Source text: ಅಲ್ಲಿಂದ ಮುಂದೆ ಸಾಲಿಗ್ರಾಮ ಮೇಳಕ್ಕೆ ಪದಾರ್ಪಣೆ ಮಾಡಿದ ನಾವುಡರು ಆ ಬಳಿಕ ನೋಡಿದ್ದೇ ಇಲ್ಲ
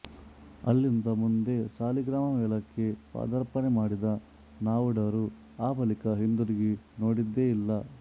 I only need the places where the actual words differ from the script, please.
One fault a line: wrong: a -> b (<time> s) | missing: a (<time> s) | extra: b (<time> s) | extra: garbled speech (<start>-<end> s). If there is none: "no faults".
extra: ಹಿಂದಿರುಗಿ (6.2 s)